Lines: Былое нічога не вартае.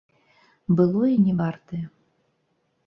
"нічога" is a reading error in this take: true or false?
true